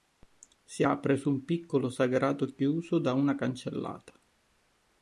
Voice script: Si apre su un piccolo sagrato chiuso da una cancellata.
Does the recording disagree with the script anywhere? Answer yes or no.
no